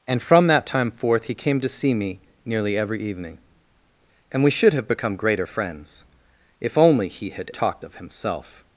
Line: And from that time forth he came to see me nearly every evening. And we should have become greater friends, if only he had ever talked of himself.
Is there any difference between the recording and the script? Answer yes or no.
yes